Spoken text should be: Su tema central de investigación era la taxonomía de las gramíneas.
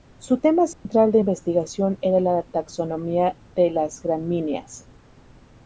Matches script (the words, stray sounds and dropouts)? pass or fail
fail